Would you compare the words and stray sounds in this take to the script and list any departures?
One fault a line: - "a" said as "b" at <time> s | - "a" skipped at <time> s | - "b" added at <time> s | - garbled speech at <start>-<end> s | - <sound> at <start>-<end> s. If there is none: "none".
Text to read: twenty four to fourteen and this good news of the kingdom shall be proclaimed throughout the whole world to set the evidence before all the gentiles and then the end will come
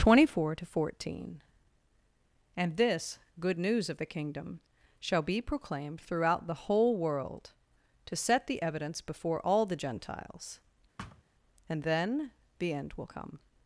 - thud at 11.0-11.2 s